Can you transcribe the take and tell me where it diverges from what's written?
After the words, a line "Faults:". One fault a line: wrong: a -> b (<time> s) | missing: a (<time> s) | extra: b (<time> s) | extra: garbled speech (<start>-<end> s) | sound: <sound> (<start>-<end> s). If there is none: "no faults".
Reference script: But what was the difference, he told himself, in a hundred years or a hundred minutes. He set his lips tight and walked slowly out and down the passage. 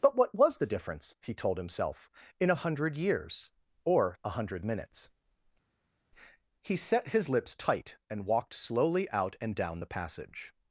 But what was the difference, he told himself, in a hundred years or a hundred minutes. He set his lips tight and walked slowly out and down the passage.
Faults:
no faults